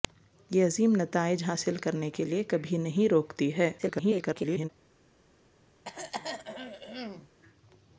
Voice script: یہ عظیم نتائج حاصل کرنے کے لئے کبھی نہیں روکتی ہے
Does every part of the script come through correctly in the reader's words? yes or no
no